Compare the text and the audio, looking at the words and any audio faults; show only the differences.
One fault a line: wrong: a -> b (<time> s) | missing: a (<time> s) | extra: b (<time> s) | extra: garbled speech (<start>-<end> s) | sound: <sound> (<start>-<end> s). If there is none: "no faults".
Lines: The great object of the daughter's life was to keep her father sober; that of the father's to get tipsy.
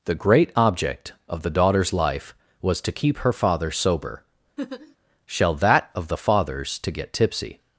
sound: laugh (4.6-5.0 s)
extra: shall (5.3 s)